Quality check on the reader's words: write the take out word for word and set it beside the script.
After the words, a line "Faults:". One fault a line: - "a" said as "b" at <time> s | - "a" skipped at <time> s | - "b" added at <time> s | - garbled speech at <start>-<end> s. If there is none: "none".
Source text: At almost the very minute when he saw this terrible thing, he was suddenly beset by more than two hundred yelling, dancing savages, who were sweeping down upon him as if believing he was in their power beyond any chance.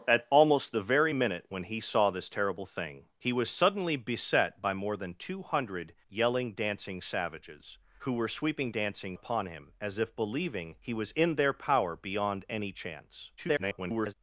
At almost the very minute when he saw this terrible thing, he was suddenly beset by more than two hundred yelling, dancing savages, who were sweeping dancing upon him as if believing he was in their power beyond any chance. [garbled]
Faults:
- "down" said as "dancing" at 8.7 s
- garbled speech at 13.4-14.1 s